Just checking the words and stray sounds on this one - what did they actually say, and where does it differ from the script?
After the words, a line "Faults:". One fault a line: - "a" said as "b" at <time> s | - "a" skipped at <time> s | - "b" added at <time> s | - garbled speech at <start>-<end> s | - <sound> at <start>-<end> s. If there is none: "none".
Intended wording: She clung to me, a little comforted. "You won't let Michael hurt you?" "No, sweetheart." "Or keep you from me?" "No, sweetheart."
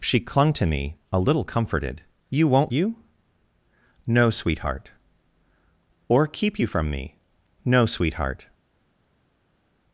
She clung to me, a little comforted. "You won't you?" "No, sweetheart." "Or keep you from me?" "No, sweetheart."
Faults:
- "let Michael hurt" skipped at 2.7 s